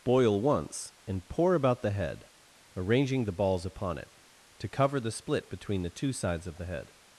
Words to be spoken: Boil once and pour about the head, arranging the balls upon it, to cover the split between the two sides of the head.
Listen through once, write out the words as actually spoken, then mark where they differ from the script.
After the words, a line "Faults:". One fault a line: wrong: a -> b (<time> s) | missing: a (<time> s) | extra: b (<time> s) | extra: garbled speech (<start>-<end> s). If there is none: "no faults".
Boil once and pour about the head, arranging the balls upon it, to cover the split between the two sides of the head.
Faults:
no faults